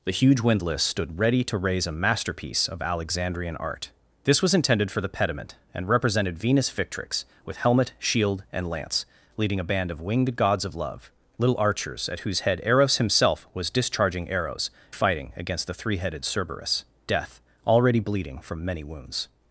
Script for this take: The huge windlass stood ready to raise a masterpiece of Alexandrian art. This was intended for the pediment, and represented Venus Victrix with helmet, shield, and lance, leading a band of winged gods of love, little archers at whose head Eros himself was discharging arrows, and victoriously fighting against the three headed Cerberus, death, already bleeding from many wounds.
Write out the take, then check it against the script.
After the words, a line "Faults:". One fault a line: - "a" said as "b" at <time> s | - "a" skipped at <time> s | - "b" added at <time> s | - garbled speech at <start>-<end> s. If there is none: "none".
The huge windlass stood ready to raise a masterpiece of Alexandrian art. This was intended for the pediment, and represented Venus Victrix with helmet, shield, and lance, leading a band of winged gods of love, little archers at whose head Eros himself was discharging arrows, fighting against the three headed Cerberus, death, already bleeding from many wounds.
Faults:
- "and victoriously" skipped at 14.7 s